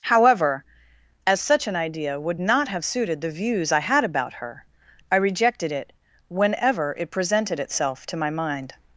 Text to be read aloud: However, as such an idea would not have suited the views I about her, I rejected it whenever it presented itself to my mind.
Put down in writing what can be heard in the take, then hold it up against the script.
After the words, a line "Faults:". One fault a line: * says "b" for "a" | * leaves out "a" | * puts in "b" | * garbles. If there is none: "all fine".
However, as such an idea would not have suited the views I had about her, I rejected it whenever it presented itself to my mind.
Faults:
* puts in "had"